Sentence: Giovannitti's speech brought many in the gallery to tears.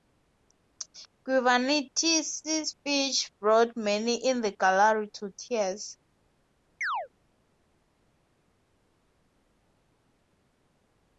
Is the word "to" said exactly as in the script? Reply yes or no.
yes